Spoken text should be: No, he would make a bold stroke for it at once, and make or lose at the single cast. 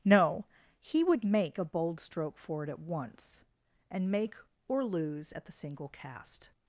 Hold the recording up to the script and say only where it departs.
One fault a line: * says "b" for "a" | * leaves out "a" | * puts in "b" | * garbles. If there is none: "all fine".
all fine